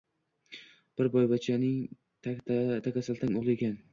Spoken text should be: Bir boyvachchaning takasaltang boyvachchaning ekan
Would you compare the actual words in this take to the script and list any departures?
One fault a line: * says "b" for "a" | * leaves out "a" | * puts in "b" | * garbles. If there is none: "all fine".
* says "o`g`li" for "boyvachchaning"